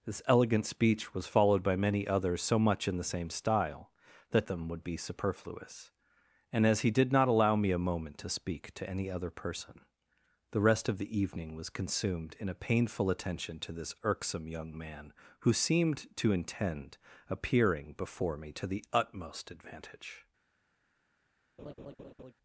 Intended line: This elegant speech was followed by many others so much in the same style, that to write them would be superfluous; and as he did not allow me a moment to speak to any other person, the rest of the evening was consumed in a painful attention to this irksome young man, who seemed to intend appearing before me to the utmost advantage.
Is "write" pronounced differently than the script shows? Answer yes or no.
yes